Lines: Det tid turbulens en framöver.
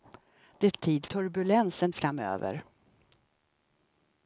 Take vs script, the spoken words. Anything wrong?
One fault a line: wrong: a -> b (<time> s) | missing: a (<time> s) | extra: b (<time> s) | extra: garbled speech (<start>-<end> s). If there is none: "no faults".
no faults